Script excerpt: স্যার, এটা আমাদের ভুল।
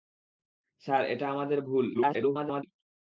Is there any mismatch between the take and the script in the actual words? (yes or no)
yes